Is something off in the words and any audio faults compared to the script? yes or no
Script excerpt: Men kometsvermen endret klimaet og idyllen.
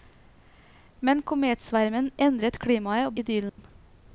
yes